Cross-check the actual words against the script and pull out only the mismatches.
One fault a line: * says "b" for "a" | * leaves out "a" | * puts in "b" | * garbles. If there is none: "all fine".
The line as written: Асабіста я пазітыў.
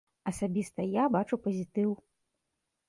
* puts in "бачу"